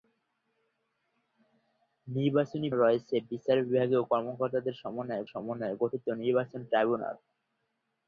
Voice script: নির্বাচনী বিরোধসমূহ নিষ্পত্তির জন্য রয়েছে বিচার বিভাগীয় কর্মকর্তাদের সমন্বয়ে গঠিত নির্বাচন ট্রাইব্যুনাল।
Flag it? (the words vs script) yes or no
yes